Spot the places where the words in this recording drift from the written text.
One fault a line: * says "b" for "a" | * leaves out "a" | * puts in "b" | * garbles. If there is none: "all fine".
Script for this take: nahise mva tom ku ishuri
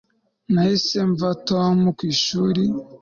all fine